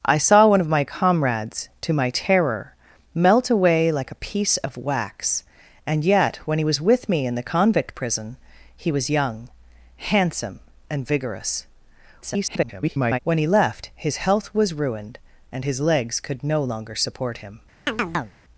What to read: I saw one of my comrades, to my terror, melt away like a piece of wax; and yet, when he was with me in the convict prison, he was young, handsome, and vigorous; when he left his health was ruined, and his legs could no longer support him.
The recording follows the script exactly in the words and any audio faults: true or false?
false